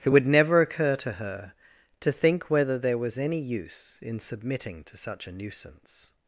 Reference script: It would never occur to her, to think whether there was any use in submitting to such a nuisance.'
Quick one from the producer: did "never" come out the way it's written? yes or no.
yes